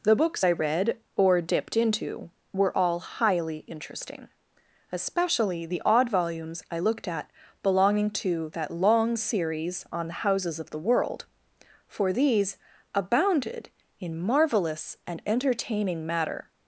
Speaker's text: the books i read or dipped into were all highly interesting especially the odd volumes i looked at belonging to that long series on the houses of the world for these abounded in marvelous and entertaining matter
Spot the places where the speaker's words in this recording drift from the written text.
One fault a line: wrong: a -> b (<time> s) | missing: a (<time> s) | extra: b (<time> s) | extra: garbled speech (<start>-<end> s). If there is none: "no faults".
no faults